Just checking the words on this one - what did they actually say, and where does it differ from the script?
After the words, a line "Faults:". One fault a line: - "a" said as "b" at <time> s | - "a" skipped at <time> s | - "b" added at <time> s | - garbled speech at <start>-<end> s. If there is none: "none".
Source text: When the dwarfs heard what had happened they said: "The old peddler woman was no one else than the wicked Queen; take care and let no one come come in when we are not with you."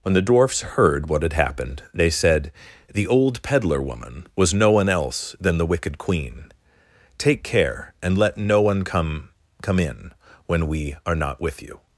When the dwarfs heard what had happened they said: "The old peddler woman was no one else than the wicked Queen; take care and let no one come come in when we are not with you."
Faults:
none